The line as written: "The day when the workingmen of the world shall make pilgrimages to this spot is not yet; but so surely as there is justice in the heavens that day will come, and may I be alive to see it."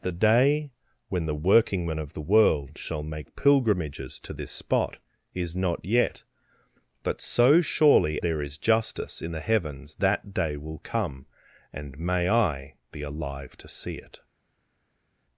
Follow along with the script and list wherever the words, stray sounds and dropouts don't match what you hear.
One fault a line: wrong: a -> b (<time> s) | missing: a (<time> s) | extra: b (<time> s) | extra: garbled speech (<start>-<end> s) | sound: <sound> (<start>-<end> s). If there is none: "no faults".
missing: as (8.2 s)